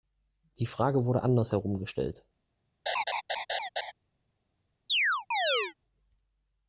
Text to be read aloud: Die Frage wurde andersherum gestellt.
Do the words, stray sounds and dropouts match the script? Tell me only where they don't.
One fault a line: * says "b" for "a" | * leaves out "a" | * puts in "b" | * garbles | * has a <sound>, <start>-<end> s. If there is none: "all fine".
* has a laugh, 2.9-3.9 s
* has a chirp, 4.9-5.7 s